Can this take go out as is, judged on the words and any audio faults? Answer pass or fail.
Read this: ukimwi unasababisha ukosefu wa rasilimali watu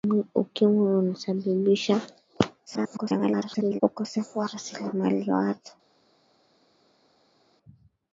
fail